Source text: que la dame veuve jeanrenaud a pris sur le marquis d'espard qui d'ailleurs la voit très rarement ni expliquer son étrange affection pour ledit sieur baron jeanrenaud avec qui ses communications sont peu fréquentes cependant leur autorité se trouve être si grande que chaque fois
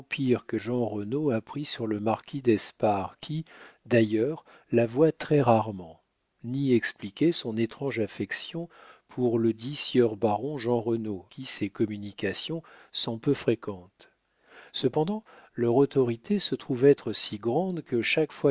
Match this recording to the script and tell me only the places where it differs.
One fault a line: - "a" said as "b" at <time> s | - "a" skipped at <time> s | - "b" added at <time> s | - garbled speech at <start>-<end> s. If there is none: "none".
- "la dame veuve" skipped at 0.6 s
- "avec" skipped at 11.3 s